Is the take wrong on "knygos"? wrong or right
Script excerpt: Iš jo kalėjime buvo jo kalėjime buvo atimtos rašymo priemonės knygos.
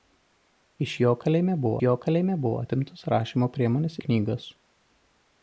right